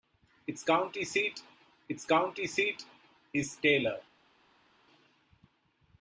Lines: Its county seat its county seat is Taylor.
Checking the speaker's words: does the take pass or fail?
pass